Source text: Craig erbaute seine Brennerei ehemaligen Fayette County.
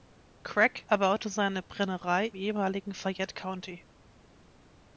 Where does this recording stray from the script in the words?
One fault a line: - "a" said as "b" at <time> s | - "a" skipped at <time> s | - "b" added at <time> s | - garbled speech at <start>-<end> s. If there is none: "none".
none